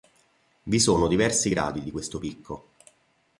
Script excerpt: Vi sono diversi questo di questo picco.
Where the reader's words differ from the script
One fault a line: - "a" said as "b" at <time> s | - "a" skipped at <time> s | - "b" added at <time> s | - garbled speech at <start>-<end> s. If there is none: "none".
- "questo" said as "gradi" at 1.5 s